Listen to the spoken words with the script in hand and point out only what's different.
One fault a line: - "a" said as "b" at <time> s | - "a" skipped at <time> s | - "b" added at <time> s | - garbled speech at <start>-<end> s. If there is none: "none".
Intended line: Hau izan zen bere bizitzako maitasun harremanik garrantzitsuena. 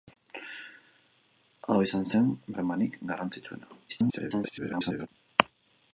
- "bere bizitzako maitasun" skipped at 2.3 s
- garbled speech at 3.9-5.1 s